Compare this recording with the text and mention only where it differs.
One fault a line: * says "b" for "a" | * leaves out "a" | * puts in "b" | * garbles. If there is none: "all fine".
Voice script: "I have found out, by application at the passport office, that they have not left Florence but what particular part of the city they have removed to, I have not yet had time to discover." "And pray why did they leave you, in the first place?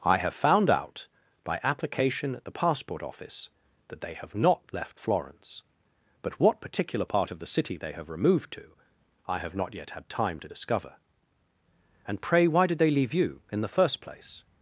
all fine